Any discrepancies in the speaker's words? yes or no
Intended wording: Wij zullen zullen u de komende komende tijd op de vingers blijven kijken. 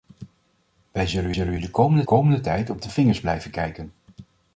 no